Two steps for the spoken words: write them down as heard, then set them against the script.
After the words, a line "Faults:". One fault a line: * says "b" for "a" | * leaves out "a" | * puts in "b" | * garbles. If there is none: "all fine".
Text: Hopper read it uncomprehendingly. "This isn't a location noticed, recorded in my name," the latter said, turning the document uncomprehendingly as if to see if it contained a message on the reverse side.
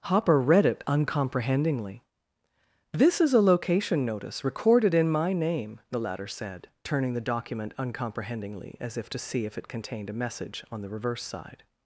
Hopper read it uncomprehendingly. "This is a location notice, recorded in my name," the latter said, turning the document uncomprehendingly as if to see if it contained a message on the reverse side.
Faults:
* says "is" for "isn't"
* says "notice" for "noticed"